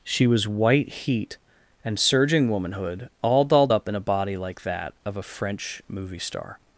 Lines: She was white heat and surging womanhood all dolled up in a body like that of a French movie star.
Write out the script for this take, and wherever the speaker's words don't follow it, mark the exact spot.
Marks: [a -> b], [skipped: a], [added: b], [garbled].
She was white heat and surging womanhood all dolled up in a body like that of a French movie star.